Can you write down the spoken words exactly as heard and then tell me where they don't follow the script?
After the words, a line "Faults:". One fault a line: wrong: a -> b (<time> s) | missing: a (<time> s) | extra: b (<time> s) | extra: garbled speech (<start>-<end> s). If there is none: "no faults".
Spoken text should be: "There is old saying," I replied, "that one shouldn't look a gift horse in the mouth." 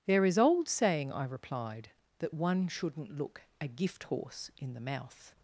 "There is old saying," I replied, "that one shouldn't look a gift horse in the mouth."
Faults:
no faults